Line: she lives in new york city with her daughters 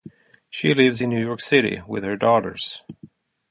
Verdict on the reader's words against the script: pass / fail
pass